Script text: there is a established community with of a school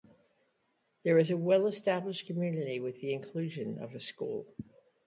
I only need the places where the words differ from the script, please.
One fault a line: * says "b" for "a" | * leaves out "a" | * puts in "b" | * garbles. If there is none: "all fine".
* puts in "well"
* puts in "the inclusion"